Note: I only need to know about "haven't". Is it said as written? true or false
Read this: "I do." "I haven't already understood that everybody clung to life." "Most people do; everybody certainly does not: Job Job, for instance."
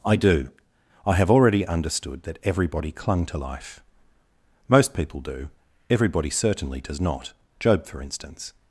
false